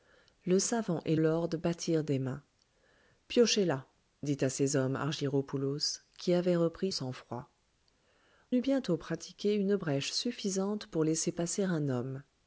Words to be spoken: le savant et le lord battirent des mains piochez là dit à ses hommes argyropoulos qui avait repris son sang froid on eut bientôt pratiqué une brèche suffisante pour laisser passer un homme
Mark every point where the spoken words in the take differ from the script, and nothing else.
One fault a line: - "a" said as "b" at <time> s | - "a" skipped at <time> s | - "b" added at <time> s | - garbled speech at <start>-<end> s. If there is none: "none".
- "le" skipped at 1.1 s
- "son" skipped at 6.9 s
- "on" skipped at 7.5 s